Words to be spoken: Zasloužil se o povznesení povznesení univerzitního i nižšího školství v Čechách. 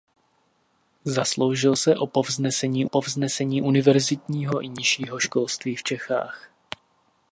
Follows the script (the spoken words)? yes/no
yes